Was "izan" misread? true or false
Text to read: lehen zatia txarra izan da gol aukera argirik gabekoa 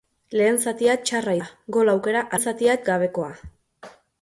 true